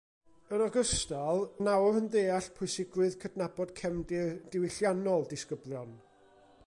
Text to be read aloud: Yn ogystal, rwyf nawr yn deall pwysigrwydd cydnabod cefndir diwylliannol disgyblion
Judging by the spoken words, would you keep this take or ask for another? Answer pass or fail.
fail